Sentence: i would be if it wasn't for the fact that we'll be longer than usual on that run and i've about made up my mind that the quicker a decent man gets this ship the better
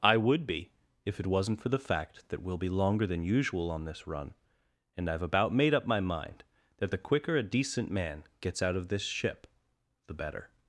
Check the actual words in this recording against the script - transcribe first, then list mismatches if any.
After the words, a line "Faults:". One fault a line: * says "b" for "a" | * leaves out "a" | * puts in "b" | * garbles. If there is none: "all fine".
i would be if it wasn't for the fact that we'll be longer than usual on this run and i've about made up my mind that the quicker a decent man gets out of this ship the better
Faults:
* says "this" for "that"
* puts in "out of"